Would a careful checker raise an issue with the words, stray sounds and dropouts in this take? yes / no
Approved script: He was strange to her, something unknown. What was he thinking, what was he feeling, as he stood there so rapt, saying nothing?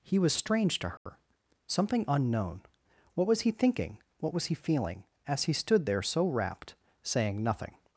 yes